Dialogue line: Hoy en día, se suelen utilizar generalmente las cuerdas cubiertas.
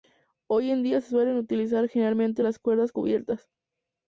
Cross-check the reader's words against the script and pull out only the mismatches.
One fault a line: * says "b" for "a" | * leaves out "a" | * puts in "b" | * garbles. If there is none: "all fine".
all fine